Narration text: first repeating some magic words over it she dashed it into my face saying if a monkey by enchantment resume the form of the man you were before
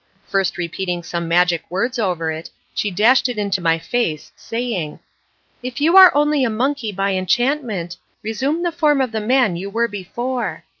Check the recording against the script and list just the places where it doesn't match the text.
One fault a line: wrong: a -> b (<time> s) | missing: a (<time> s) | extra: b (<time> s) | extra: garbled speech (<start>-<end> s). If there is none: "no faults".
extra: you are only (5.8 s)